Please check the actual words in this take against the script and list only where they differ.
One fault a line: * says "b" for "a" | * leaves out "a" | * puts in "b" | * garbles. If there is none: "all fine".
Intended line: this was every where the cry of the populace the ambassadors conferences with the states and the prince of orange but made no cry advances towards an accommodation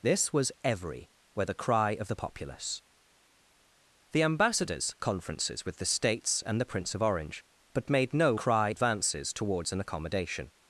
all fine